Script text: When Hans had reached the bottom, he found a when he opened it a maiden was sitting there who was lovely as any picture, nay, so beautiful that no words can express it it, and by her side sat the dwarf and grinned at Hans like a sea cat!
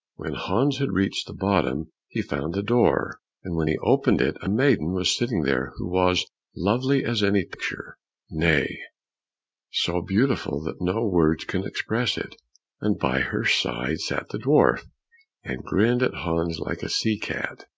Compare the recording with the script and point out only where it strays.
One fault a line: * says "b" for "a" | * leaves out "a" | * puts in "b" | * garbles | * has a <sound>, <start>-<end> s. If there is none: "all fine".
* puts in "door and"
* leaves out "it"